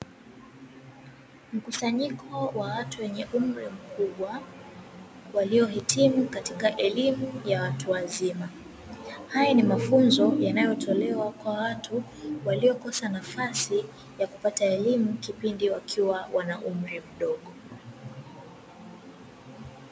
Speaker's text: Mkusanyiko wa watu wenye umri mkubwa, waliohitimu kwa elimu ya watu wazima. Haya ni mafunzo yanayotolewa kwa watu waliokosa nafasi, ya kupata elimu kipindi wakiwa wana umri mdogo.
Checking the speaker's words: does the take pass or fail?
fail